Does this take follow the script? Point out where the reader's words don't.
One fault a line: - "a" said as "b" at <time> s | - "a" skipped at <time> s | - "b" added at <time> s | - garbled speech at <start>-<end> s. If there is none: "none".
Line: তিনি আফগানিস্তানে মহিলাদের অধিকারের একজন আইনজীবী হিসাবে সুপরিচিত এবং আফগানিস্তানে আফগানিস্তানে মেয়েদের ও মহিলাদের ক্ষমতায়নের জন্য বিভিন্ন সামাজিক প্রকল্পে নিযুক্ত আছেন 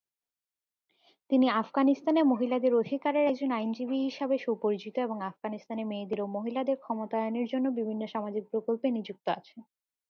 - "আফগানিস্তানে" skipped at 5.8 s